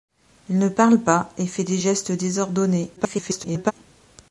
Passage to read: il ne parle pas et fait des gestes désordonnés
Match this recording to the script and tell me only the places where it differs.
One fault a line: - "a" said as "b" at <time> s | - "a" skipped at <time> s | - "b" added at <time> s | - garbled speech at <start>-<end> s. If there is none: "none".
- garbled speech at 3.0-3.7 s